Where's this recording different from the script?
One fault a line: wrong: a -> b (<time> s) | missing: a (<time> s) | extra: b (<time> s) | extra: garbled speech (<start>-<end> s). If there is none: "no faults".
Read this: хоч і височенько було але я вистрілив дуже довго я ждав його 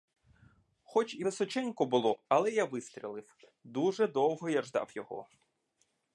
no faults